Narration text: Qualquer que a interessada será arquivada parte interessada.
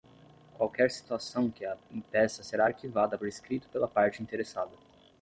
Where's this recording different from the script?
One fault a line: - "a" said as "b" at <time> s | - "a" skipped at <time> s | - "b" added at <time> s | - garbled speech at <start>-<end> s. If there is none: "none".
- "situação" added at 0.9 s
- "interessada" said as "impeça" at 1.9 s
- "por escrito pela" added at 3.1 s